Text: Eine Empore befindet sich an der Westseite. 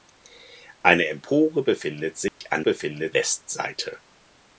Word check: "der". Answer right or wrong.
wrong